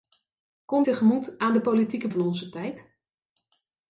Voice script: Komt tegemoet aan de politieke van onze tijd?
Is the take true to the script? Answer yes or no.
yes